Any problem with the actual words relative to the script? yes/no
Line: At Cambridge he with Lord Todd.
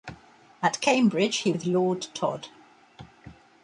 no